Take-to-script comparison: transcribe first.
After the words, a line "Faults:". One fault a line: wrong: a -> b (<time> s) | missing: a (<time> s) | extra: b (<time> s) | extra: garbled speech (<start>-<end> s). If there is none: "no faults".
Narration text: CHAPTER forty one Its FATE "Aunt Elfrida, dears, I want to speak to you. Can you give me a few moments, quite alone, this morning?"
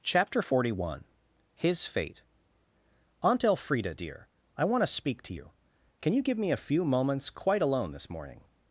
CHAPTER forty one HIS FATE "Aunt Elfrida, dear, I want to speak to you. Can you give me a few moments, quite alone, this morning?"
Faults:
wrong: Its -> HIS (1.6 s)
wrong: dears -> dear (3.9 s)